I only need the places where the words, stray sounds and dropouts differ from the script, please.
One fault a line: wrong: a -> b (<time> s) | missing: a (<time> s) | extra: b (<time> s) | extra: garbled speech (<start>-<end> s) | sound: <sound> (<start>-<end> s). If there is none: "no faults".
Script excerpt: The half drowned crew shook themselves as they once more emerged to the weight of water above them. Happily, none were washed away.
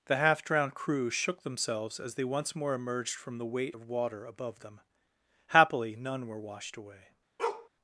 wrong: to -> from (3.1 s)
sound: bark (7.4-7.7 s)